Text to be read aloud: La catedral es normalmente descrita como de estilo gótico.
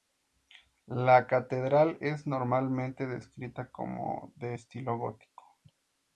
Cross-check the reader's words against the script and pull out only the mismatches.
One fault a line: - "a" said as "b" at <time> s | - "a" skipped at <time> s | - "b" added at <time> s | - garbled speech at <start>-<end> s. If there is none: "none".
none